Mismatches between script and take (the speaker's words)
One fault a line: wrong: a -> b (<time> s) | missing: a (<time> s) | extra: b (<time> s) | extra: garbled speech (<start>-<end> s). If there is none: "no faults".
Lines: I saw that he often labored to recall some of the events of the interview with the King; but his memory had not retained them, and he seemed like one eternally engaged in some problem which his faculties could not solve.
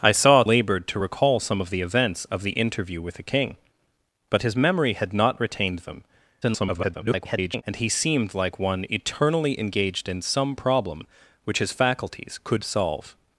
missing: that he often (0.4 s)
extra: garbled speech (6.4-7.6 s)
missing: not (12.6 s)